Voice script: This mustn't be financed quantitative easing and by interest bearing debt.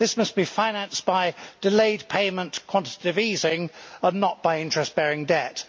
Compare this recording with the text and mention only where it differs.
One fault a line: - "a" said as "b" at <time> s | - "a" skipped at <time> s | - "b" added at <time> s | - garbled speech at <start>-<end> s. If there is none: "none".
- "mustn't" said as "must" at 0.1 s
- "by delayed payment" added at 1.0 s
- "not" added at 4.2 s